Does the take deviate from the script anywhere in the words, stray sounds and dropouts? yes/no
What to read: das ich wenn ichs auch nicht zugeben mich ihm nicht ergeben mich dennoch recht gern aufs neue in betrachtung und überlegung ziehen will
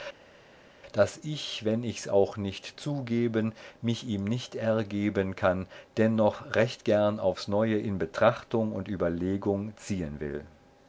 yes